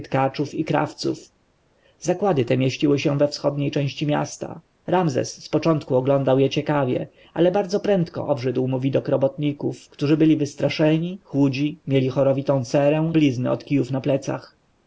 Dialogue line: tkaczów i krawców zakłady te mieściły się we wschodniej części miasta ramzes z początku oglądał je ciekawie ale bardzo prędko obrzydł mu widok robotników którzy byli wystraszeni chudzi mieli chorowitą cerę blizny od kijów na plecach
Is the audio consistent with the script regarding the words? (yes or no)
yes